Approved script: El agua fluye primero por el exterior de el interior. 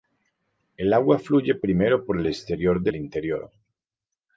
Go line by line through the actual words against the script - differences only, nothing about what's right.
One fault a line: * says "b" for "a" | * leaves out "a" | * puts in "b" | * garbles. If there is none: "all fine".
all fine